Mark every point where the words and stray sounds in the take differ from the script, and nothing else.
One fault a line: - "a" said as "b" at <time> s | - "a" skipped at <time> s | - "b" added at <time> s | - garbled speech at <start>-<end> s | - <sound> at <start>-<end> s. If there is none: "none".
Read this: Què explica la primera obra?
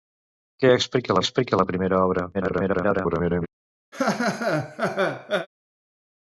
- "explica" added at 1.2 s
- garbled speech at 2.3-3.5 s
- laugh at 3.9-5.5 s